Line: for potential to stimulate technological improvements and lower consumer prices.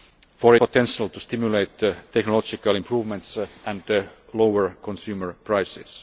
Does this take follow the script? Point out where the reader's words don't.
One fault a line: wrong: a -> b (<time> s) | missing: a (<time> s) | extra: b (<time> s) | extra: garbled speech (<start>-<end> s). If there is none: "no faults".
no faults